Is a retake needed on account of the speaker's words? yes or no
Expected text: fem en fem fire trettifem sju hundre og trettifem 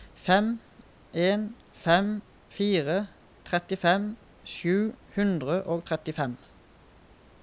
no